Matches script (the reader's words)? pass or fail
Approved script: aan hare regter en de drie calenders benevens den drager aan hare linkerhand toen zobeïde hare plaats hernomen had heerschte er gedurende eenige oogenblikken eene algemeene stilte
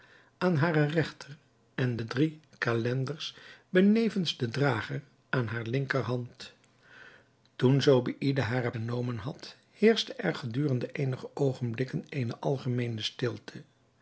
fail